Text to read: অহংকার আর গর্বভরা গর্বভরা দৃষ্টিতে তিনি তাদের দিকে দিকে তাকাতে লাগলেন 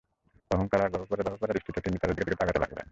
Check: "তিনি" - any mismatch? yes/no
no